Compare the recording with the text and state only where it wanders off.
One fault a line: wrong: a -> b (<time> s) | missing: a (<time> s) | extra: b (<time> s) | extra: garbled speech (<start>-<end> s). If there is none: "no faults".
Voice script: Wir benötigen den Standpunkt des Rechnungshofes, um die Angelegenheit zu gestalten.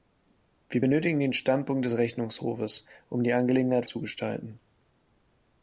no faults